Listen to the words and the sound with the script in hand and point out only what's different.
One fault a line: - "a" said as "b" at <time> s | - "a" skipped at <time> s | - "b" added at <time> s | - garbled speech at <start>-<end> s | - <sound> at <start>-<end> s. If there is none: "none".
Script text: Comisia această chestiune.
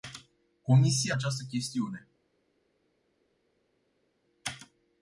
none